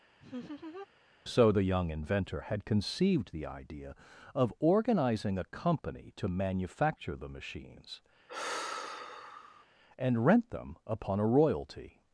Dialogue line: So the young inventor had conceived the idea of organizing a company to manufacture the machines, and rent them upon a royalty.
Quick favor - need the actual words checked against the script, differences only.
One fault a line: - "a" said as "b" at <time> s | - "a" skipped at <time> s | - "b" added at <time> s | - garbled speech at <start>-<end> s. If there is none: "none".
none